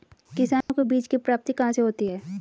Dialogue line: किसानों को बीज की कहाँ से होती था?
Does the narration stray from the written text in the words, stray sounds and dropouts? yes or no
yes